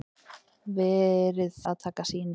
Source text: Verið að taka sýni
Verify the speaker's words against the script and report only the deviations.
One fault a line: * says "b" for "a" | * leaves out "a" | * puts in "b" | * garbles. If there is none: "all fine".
all fine